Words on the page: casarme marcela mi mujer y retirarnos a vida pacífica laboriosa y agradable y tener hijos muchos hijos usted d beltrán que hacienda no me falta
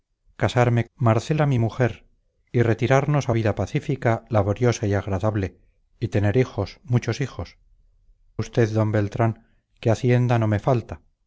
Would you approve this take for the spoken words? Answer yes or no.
yes